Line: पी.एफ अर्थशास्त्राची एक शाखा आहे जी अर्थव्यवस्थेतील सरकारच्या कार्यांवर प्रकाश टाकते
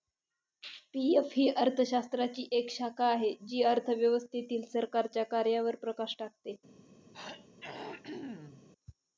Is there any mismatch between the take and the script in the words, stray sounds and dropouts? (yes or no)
yes